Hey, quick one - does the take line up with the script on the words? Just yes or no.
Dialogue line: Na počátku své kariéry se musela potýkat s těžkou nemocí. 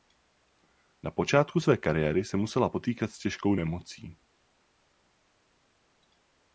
yes